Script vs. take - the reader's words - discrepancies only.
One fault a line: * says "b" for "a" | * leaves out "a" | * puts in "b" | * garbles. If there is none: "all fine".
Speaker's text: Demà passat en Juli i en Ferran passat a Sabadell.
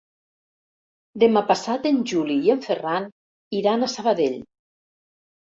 * says "iran" for "passat"